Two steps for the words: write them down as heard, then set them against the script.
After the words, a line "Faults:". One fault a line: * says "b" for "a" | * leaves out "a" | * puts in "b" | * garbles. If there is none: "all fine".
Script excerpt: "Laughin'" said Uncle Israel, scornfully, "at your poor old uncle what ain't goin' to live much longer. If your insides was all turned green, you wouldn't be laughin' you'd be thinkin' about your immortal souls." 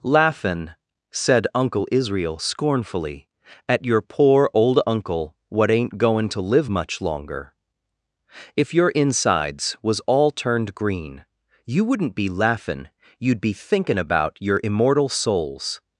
"Laughin'" said Uncle Israel, scornfully, "at your poor old uncle what ain't goin' to live much longer. If your insides was all turned green, you wouldn't be laughin' you'd be thinkin' about your immortal souls."
Faults:
all fine